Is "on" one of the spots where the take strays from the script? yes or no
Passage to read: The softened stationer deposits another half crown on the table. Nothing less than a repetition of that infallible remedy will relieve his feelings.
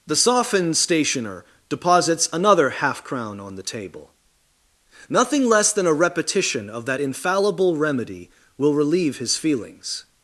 no